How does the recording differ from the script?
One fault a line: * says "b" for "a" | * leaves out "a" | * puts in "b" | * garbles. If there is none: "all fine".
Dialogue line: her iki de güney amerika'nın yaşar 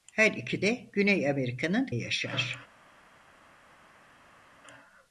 all fine